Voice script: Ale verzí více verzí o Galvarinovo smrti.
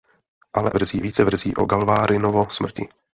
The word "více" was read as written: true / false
true